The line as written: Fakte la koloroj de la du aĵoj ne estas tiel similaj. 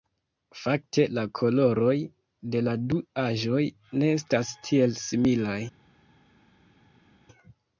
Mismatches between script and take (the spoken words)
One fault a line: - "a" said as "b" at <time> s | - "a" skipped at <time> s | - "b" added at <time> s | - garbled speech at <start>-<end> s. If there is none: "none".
none